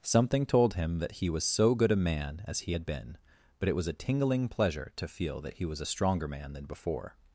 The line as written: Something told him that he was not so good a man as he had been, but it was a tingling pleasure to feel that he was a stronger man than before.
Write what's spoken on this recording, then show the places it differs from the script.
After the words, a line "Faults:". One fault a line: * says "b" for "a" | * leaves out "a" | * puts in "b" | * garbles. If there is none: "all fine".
Something told him that he was so good a man as he had been, but it was a tingling pleasure to feel that he was a stronger man than before.
Faults:
* leaves out "not"